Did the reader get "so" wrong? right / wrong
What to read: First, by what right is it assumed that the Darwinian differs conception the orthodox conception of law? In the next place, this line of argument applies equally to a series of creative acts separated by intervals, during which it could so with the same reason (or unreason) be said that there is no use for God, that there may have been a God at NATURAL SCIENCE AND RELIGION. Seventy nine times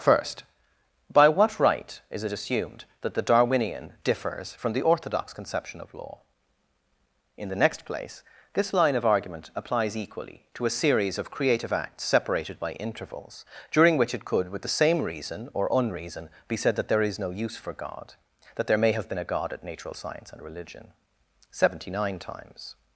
wrong